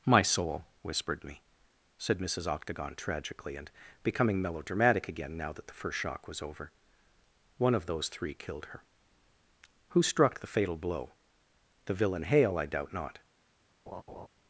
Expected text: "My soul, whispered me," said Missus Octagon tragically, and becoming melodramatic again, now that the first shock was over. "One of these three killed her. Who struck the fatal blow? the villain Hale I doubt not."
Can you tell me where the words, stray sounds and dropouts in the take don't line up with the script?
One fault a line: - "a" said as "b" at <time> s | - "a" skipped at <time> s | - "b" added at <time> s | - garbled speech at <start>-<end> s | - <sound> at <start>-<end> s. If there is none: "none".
- "these" said as "those" at 7.8 s
- laugh at 13.9-14.3 s